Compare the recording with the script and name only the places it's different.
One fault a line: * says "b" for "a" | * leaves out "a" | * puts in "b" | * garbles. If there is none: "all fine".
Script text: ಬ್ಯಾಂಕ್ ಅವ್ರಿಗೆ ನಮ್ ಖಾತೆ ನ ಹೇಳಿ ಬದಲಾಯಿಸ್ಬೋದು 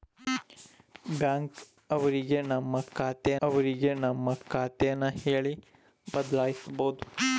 * puts in "ಅವ್ರಿಗೆ ನಮ್ ಖಾತೆ"